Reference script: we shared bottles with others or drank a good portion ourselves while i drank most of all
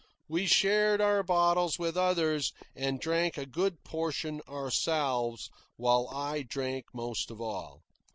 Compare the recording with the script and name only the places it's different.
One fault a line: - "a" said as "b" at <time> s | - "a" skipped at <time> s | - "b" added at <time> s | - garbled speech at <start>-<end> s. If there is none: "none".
- "our" added at 1.0 s
- "or" said as "and" at 2.8 s